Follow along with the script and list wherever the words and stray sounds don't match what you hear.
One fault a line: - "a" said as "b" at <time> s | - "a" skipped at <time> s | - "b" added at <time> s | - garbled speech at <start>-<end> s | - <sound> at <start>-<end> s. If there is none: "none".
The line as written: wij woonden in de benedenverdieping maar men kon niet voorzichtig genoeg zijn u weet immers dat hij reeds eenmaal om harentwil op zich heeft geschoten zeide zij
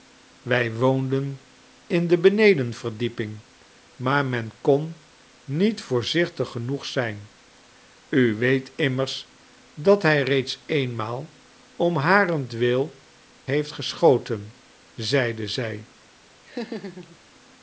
- "op zich" skipped at 12.9 s
- laugh at 16.5-17.2 s